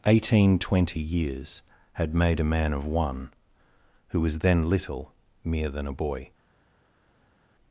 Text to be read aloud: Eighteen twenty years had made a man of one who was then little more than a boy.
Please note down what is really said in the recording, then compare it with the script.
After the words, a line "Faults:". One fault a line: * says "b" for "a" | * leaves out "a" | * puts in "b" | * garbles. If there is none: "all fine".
Eighteen twenty years had made a man of one who was then little mere than a boy.
Faults:
* says "mere" for "more"